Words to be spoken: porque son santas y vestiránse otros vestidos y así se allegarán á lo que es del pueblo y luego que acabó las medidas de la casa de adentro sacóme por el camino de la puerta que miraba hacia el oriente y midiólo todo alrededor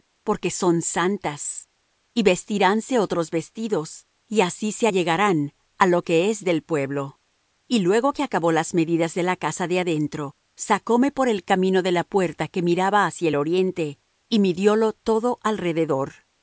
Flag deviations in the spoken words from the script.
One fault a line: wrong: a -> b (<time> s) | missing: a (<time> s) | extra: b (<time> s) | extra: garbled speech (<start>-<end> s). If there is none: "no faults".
no faults